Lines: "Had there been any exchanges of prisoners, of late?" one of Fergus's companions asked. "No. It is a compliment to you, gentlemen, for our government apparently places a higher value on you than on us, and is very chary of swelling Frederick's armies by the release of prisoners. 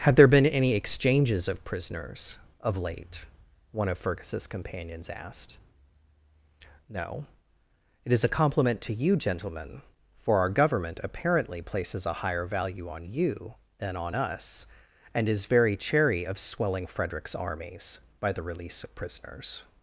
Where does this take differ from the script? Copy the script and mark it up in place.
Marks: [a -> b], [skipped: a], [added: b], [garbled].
"Had there been any exchanges of prisoners, of late?" one of Fergus's companions asked. "No. It is a compliment to you, gentlemen, for our government apparently places a higher value on you than on us, and is very chary of swelling Frederick's armies by the release of prisoners.